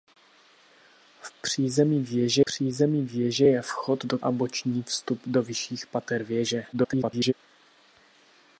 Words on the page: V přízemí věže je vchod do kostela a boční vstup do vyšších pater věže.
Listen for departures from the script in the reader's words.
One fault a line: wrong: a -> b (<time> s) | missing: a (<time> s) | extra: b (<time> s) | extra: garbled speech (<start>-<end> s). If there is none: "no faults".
extra: přízemí věže (2.4 s)
missing: kostela (4.2 s)
extra: garbled speech (6.7-7.3 s)